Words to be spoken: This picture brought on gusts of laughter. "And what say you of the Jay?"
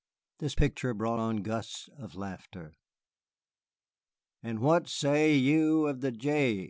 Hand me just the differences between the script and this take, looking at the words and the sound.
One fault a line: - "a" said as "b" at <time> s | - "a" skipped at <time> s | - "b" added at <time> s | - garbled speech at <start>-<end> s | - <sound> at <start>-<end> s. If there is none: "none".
none